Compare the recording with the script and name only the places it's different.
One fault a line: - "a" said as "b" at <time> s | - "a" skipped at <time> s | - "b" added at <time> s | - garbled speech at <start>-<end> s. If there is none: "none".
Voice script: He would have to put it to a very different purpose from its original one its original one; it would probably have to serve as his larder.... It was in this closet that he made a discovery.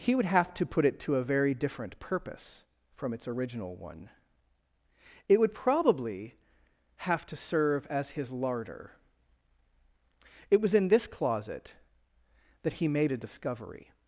- "its original one" skipped at 4.1 s